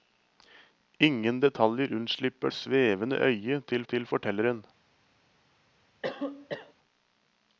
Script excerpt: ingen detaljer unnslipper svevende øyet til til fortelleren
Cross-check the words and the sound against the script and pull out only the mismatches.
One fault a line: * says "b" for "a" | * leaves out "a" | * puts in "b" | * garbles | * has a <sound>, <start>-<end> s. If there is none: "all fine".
* has a cough, 6.0-6.7 s